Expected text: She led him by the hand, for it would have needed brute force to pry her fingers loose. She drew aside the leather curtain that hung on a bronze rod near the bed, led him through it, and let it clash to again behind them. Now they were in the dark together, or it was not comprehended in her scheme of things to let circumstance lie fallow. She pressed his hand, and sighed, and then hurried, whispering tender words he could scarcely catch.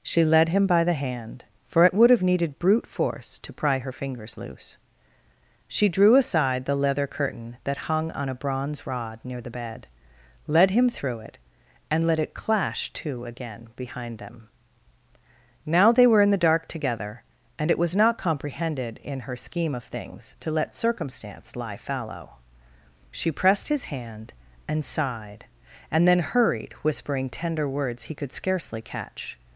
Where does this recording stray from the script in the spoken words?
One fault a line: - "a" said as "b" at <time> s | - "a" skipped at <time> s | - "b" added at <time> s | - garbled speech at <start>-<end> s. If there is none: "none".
- "or" said as "and" at 17.6 s